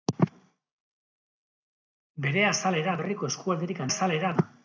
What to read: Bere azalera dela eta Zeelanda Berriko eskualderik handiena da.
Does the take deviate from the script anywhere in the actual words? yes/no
yes